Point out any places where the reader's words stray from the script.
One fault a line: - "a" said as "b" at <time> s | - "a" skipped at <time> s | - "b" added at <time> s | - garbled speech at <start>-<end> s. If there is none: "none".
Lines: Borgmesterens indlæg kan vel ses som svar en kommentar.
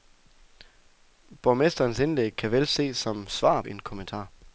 none